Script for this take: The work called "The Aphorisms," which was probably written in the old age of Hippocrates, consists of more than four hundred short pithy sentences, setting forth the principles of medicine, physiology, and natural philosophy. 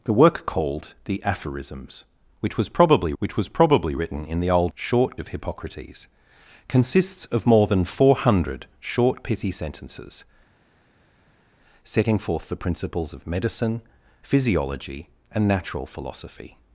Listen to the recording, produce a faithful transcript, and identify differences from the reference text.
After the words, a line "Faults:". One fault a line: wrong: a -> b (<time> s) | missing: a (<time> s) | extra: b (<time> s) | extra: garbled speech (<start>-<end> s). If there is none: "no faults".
The work called "The Aphorisms," which was probably which was probably written in the old short of Hippocrates, consists of more than four hundred short pithy sentences, setting forth the principles of medicine, physiology, and natural philosophy.
Faults:
extra: which was probably (3.2 s)
wrong: age -> short (4.7 s)